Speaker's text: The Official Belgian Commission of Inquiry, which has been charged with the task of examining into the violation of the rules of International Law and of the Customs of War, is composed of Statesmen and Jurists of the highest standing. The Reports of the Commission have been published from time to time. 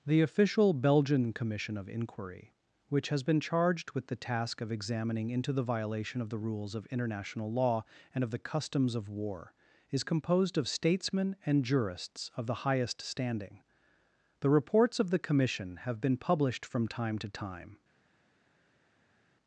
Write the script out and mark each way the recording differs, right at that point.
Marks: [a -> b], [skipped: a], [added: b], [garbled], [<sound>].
The Official Belgian Commission of Inquiry, which has been charged with the task of examining into the violation of the rules of International Law and of the Customs of War, is composed of Statesmen and Jurists of the highest standing. The Reports of the Commission have been published from time to time.